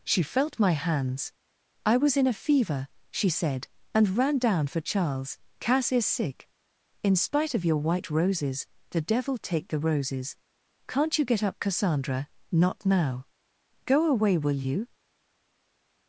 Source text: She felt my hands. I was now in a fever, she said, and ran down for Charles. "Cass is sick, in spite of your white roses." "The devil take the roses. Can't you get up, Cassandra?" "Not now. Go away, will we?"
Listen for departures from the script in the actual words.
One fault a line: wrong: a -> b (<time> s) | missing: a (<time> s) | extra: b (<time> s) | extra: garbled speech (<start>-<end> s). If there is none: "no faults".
missing: now (2.1 s)
wrong: we -> you (14.6 s)